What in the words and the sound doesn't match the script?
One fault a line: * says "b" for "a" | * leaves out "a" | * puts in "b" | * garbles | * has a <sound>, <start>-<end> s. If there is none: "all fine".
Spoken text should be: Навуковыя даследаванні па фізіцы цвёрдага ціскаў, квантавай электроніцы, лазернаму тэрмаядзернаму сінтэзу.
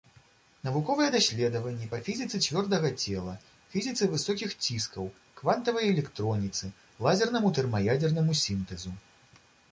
* puts in "цела фізіцы высокіх"